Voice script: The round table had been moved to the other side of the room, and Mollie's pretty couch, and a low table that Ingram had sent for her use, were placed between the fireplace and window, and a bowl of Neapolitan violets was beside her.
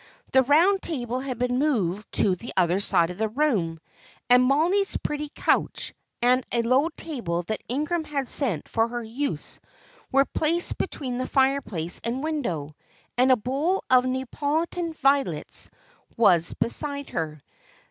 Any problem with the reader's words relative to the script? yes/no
no